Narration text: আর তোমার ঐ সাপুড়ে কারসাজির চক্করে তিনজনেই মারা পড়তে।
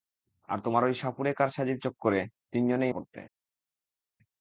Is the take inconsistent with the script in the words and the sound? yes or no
yes